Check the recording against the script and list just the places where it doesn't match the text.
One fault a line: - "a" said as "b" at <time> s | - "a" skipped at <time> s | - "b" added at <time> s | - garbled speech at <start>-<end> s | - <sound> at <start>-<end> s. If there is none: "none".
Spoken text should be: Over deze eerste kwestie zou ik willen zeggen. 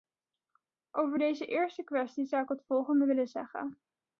- "het volgende" added at 2.5 s